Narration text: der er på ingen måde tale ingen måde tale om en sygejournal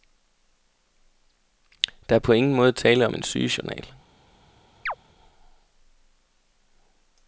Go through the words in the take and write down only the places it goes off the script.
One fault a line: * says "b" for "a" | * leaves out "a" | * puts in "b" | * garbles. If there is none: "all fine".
* leaves out "ingen måde tale"